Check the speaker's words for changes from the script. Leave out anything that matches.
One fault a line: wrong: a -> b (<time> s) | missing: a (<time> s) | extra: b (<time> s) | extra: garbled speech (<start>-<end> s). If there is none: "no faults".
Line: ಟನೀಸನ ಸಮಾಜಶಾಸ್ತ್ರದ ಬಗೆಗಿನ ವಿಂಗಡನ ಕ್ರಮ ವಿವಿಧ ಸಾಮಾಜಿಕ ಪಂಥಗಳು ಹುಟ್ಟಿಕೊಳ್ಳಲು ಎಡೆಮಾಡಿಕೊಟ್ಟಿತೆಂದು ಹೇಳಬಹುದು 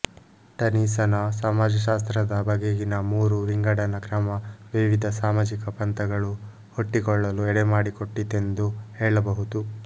extra: ಮೂರು (3.1 s)